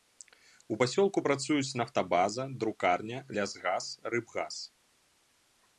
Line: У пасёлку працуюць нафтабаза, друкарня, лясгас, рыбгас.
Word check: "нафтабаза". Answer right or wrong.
right